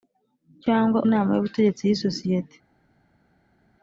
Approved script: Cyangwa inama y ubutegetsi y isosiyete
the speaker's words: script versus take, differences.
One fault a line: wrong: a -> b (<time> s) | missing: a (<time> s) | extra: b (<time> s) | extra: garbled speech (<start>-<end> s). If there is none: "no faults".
no faults